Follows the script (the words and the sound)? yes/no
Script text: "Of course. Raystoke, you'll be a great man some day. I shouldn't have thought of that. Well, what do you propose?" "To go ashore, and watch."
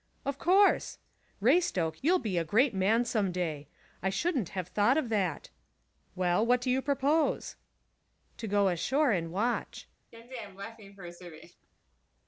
no